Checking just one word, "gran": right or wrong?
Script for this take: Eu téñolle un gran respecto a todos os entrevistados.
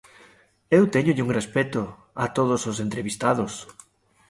wrong